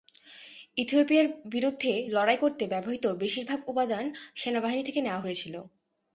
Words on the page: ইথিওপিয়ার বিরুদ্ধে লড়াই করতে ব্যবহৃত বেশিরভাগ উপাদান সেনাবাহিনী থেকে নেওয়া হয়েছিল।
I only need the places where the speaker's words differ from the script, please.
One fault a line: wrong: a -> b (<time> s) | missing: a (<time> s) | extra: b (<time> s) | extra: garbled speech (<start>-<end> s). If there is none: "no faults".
no faults